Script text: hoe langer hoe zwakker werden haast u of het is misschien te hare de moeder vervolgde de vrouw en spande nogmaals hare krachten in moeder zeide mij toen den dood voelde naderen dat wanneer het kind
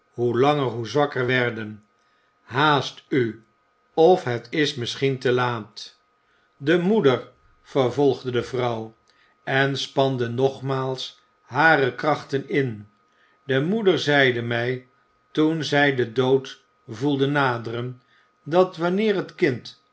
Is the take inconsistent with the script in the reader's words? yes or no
yes